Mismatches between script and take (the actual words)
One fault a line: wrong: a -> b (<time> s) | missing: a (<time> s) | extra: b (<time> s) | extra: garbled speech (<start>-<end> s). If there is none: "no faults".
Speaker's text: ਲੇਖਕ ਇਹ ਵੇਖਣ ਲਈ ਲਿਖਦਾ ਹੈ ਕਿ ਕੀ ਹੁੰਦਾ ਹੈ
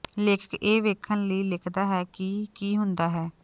no faults